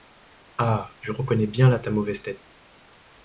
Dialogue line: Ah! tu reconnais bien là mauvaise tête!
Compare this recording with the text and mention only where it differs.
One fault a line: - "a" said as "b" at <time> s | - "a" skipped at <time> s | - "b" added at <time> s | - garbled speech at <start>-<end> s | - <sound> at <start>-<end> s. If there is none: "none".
- "tu" said as "je" at 1.0 s
- "ta" added at 1.8 s